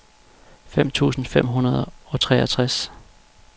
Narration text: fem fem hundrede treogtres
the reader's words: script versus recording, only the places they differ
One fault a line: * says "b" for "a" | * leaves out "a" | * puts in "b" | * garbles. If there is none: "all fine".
* puts in "tusind"
* puts in "og"